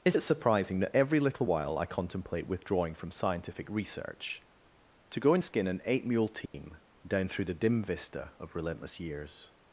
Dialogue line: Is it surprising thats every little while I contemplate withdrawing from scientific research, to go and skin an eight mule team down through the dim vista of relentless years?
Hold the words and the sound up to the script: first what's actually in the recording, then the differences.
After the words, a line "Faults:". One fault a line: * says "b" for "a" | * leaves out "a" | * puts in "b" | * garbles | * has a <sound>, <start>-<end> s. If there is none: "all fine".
Is it surprising that every little while I contemplate withdrawing from scientific research, to go and skin an eight mule team down through the dim vista of relentless years?
Faults:
* says "that" for "thats"
* has a dropout, 6.5-6.5 s